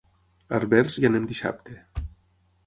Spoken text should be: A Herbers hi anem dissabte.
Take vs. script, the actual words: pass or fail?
pass